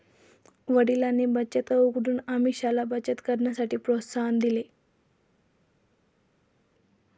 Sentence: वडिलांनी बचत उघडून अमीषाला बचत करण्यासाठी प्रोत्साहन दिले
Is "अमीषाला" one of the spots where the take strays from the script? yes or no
no